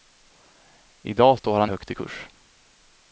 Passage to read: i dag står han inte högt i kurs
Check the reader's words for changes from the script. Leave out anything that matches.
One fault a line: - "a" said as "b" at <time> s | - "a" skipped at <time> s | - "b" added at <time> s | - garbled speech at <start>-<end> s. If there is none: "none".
- "inte" skipped at 1.7 s